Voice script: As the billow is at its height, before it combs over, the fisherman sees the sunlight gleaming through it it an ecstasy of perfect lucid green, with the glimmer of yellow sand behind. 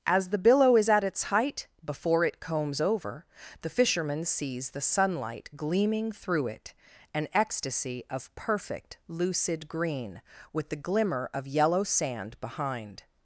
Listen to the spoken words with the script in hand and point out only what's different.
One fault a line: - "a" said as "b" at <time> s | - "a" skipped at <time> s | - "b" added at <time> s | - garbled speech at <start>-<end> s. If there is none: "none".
- "it" skipped at 6.7 s